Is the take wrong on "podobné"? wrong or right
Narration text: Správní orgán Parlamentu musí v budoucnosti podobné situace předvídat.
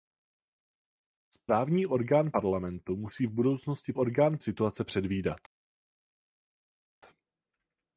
wrong